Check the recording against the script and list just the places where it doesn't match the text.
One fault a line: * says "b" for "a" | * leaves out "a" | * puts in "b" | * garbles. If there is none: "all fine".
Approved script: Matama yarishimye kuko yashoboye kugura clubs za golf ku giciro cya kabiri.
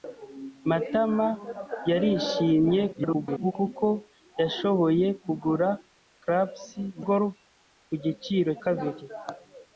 * garbles
* leaves out "za"
* leaves out "cya"